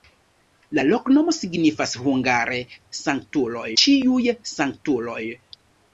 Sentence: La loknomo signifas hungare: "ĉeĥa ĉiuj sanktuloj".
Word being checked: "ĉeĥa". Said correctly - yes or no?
no